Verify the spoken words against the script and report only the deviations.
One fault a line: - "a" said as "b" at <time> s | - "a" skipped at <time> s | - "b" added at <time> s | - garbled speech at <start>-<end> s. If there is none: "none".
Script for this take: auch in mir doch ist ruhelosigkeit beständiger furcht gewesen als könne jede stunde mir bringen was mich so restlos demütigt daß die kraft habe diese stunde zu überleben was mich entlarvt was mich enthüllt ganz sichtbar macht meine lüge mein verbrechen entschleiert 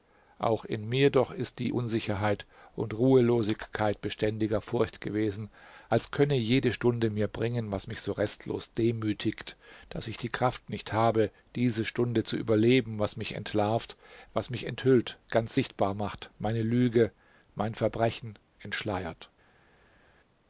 - "die unsicherheit und" added at 1.6 s
- "ich" added at 10.1 s
- "nicht" added at 10.7 s